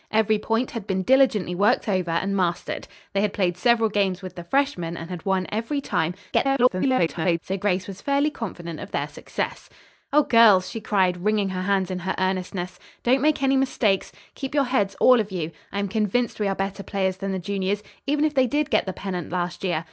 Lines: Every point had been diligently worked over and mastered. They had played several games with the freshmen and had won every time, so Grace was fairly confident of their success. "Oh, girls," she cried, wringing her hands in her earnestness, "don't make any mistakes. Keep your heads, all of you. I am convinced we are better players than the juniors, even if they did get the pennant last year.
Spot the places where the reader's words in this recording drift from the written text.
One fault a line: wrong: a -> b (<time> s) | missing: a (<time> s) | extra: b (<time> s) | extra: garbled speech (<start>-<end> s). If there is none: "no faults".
extra: garbled speech (6.3-7.4 s)